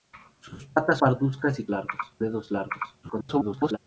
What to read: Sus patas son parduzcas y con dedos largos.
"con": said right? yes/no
no